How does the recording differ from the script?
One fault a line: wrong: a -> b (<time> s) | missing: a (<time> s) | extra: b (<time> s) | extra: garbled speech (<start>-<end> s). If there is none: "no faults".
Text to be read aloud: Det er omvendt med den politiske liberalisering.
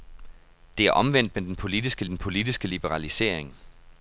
extra: den politiske (2.0 s)